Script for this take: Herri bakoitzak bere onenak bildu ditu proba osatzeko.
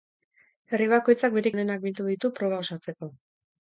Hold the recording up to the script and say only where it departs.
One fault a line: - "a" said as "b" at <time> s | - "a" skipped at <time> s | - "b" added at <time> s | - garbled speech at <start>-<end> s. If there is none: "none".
none